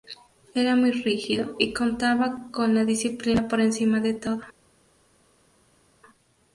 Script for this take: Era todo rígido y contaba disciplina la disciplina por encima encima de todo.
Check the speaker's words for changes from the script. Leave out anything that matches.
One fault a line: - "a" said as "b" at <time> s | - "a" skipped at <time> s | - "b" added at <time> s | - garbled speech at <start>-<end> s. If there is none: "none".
- "todo" said as "muy" at 0.8 s
- "disciplina" said as "con" at 2.5 s
- "encima" skipped at 4.0 s